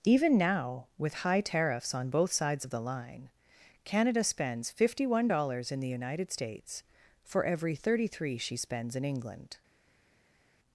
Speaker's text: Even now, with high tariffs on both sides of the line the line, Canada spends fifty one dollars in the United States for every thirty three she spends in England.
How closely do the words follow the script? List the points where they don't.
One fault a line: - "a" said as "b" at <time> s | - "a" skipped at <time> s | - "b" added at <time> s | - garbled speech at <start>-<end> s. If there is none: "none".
- "the line" skipped at 3.3 s